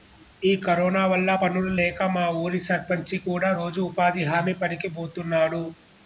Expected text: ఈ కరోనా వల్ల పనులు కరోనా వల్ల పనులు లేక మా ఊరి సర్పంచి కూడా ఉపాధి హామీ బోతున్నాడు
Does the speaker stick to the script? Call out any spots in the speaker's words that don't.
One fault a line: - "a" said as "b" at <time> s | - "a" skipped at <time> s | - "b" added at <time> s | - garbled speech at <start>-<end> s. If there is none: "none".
- "కరోనా వల్ల పనులు" skipped at 1.7 s
- "రోజు" added at 3.6 s
- "పనికి" added at 4.6 s